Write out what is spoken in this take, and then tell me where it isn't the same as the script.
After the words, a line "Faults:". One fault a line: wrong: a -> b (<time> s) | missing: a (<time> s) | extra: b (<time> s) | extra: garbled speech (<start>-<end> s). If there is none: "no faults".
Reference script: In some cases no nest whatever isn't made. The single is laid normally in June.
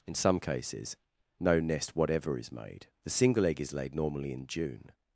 In some cases no nest whatever is made. The single egg is laid normally in June.
Faults:
wrong: isn't -> is (2.4 s)
extra: egg (3.5 s)